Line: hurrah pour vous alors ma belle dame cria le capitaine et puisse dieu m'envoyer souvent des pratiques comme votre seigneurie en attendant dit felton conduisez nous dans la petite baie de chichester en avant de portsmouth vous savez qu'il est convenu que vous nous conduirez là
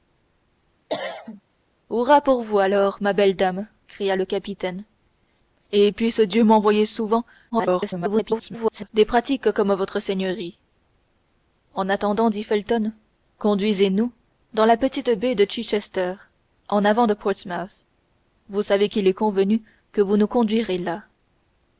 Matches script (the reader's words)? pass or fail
fail